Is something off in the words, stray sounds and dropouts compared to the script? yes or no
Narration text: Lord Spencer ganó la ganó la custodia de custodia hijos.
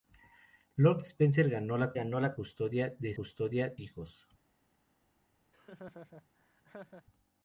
yes